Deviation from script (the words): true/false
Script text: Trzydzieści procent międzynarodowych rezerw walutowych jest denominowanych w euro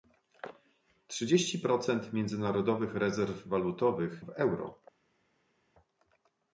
true